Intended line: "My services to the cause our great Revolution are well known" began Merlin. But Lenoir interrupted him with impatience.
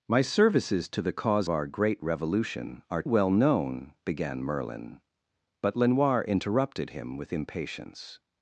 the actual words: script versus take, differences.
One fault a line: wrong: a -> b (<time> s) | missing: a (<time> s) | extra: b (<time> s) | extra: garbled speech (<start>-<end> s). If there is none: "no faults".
no faults